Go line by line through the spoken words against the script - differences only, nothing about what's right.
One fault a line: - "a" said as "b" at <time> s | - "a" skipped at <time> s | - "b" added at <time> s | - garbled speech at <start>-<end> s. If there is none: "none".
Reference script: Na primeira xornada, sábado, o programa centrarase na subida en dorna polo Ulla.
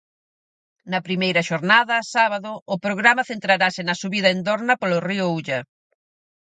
- "río" added at 5.1 s